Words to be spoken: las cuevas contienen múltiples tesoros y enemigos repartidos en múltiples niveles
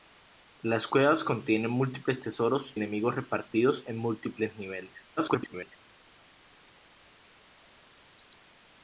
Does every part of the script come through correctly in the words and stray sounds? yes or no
no